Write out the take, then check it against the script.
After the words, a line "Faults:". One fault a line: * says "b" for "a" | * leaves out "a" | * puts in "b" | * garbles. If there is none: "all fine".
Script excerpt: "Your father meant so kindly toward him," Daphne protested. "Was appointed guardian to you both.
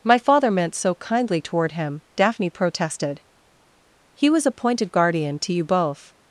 "My father meant so kindly toward him," Daphne protested. "He was appointed guardian to you both.
Faults:
* says "My" for "Your"
* puts in "He"